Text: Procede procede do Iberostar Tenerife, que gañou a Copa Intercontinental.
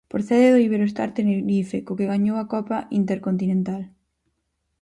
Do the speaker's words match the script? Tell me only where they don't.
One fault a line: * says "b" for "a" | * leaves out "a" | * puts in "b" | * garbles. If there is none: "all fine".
* leaves out "procede"
* puts in "co"